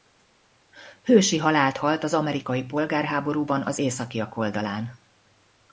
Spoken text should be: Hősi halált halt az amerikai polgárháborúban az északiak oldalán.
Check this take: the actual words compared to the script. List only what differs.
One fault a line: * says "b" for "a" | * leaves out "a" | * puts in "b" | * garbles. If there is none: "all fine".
all fine